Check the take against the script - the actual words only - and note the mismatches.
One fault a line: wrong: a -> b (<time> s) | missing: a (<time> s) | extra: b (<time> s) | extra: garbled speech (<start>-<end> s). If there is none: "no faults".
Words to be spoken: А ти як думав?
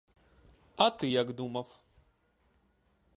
no faults